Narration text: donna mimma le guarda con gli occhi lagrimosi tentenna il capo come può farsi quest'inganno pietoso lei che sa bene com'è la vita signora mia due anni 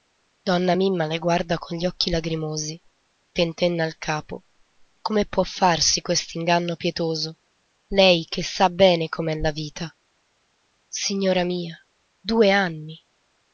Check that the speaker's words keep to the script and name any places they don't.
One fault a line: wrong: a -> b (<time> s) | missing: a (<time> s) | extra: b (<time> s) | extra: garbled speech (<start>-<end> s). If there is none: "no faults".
no faults